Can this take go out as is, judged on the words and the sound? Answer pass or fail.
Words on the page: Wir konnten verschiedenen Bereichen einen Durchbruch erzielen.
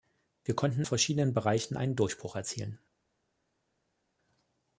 pass